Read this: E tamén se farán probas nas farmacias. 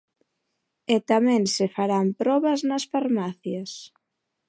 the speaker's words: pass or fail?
pass